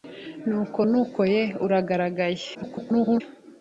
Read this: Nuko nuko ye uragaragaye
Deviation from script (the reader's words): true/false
true